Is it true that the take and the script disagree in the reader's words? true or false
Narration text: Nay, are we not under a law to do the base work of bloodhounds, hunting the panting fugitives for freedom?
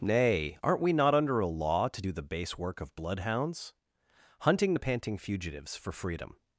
true